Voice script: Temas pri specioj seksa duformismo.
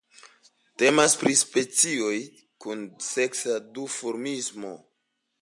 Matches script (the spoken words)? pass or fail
fail